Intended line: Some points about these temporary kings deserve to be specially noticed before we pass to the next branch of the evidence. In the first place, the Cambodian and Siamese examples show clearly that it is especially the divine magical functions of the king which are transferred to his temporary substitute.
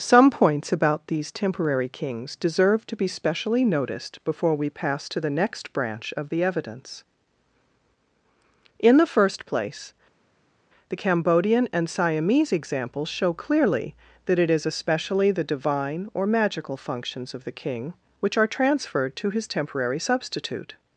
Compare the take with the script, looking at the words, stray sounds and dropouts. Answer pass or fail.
fail